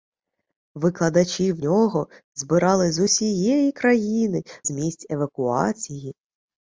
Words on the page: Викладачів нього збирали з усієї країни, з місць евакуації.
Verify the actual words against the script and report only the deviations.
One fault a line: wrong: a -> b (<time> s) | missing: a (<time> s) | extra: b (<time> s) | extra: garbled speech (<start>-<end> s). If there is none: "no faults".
no faults